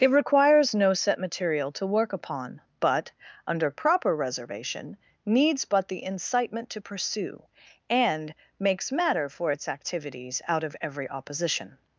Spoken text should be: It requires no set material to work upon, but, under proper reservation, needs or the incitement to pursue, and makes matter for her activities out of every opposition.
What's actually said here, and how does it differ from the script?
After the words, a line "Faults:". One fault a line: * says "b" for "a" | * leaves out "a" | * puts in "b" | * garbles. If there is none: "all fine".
It requires no set material to work upon, but, under proper reservation, needs but the incitement to pursue, and makes matter for its activities out of every opposition.
Faults:
* says "but" for "or"
* says "its" for "her"